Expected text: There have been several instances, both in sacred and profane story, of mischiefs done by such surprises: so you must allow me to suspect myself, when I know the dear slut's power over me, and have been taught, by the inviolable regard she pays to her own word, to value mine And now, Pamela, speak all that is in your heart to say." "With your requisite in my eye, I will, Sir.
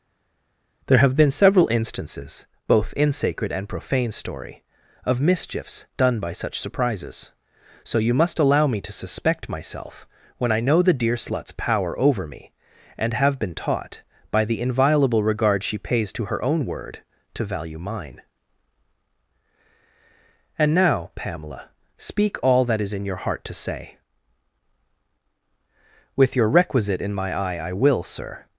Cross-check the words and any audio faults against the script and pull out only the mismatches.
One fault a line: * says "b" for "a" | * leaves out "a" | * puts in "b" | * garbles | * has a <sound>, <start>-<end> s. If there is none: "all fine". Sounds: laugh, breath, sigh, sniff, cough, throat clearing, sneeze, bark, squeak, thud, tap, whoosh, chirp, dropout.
all fine